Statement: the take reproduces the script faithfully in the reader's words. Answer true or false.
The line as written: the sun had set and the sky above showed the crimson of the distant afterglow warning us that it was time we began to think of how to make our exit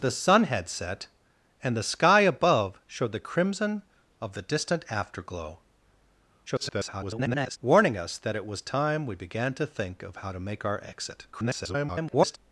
false